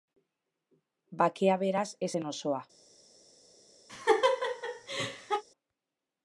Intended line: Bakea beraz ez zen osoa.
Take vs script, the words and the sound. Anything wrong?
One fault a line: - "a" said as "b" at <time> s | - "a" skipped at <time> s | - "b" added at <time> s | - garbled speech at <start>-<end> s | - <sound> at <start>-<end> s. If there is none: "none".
- laugh at 3.9-5.4 s